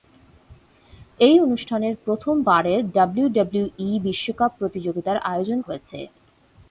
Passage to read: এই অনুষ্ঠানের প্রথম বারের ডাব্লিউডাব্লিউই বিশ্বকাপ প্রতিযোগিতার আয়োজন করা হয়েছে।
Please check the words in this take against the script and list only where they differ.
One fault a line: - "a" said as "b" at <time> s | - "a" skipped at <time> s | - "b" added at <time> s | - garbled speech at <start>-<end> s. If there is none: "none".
- "করা" skipped at 5.6 s